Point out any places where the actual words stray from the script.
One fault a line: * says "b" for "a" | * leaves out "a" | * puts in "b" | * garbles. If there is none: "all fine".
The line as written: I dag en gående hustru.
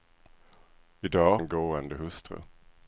all fine